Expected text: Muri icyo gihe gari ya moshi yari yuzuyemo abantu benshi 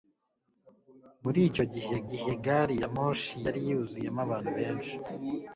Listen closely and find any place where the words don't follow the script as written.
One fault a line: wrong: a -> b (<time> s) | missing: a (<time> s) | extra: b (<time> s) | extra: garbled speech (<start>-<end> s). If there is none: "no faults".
extra: gihe (2.1 s)